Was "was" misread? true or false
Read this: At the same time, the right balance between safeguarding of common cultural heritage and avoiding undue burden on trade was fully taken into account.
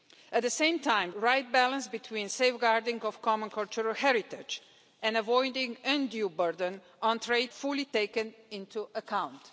true